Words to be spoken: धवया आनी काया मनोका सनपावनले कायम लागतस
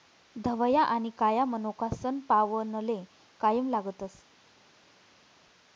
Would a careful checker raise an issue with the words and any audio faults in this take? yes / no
no